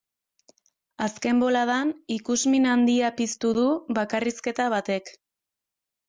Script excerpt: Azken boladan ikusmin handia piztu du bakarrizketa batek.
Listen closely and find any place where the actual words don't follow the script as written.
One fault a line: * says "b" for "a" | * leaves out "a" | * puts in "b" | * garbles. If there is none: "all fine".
all fine